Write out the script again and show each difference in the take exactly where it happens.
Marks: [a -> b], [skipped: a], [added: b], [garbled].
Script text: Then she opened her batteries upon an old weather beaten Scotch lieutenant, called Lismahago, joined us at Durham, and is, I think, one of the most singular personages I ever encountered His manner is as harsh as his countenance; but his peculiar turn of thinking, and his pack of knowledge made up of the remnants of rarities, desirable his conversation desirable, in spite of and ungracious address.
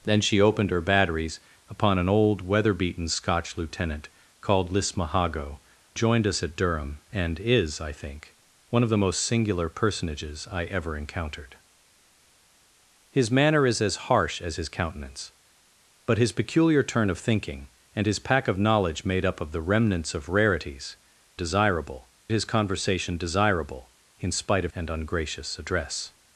Then she opened her batteries upon an old weather beaten Scotch lieutenant, called Lismahago, joined us at Durham, and is, I think, one of the most singular personages I ever encountered His manner is as harsh as his countenance; but his peculiar turn of thinking, and his pack of knowledge made up of the remnants of rarities, desirable his conversation desirable, in spite of and ungracious address.